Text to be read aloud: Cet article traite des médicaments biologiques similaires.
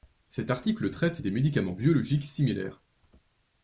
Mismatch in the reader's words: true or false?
false